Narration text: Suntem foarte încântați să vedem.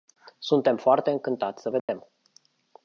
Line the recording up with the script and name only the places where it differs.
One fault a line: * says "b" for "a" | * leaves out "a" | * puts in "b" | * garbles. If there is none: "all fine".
all fine